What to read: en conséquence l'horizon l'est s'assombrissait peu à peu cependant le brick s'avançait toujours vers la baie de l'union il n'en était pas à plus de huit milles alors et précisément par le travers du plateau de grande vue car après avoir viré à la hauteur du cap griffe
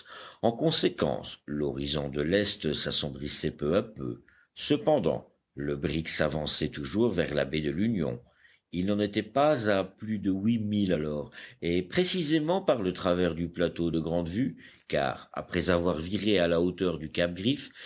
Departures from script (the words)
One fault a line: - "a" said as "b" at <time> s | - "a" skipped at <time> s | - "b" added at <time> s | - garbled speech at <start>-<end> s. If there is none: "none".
- "de" added at 2.1 s